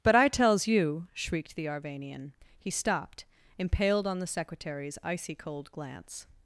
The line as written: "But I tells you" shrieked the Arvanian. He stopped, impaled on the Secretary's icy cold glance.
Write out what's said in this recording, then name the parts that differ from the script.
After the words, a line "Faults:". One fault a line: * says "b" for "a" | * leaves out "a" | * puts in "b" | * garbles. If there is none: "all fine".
"But I tells you" shrieked the Arvanian. He stopped, impaled on the Secretary's icy cold glance.
Faults:
all fine